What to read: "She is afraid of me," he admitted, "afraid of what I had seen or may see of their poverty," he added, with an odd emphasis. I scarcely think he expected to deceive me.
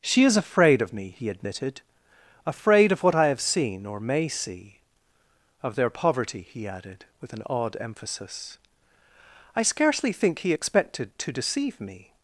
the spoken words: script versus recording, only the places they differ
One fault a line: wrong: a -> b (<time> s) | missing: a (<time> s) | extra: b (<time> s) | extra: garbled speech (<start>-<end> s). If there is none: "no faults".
wrong: had -> have (3.3 s)